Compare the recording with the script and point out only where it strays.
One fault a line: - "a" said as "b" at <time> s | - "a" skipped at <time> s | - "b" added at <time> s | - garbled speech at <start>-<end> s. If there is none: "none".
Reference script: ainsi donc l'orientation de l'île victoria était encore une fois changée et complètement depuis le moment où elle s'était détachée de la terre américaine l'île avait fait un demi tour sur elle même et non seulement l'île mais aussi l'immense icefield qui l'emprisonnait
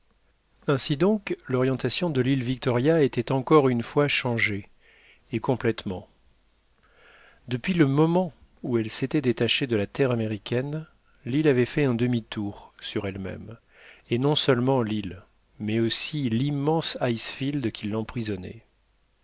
none